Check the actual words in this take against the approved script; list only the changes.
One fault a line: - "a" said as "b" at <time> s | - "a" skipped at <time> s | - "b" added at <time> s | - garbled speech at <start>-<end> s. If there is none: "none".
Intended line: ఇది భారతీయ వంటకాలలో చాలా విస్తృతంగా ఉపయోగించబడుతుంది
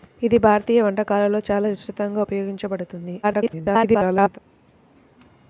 - garbled speech at 3.2-4.4 s